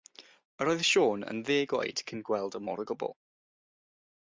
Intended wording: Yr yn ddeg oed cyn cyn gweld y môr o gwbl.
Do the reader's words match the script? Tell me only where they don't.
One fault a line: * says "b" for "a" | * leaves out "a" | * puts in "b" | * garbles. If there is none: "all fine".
* puts in "oedd Siôn"
* leaves out "cyn"